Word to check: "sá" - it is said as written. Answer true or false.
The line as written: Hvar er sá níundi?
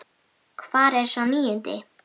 true